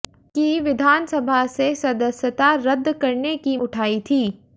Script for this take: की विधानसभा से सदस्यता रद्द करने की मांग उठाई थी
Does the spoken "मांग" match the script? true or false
false